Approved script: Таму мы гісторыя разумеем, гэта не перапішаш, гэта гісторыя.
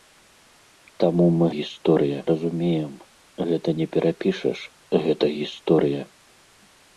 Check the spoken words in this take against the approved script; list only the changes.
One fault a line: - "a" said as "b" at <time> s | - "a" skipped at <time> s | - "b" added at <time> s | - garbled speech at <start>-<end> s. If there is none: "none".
none